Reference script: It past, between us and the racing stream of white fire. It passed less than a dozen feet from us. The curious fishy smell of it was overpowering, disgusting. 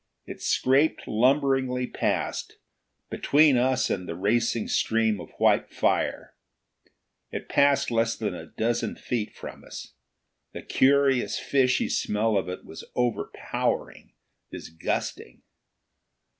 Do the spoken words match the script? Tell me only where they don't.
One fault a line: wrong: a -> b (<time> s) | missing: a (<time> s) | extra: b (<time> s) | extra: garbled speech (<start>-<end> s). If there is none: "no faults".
extra: scraped lumberingly (0.4 s)